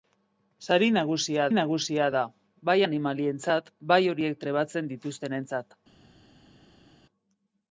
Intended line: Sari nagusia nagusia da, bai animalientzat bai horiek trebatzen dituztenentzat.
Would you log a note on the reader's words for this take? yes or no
no